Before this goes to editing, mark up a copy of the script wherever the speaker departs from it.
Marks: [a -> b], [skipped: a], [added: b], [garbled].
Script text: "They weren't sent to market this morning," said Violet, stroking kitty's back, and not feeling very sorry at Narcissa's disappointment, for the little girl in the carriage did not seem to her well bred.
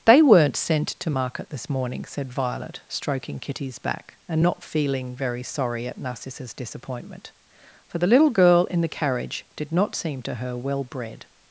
"They weren't sent to market this morning," said Violet, stroking kitty's back, and not feeling very sorry at Narcissa's disappointment, for the little girl in the carriage did not seem to her well bred.